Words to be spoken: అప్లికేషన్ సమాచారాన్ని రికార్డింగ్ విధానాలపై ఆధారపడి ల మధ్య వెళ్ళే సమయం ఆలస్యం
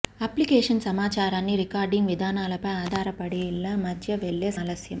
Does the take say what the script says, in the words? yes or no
no